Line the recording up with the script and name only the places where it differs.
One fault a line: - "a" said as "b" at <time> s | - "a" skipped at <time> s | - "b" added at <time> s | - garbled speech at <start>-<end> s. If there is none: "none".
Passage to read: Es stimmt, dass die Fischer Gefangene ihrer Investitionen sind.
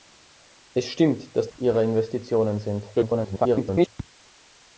- "die Fischer Gefangene" skipped at 1.5 s
- garbled speech at 2.9-3.9 s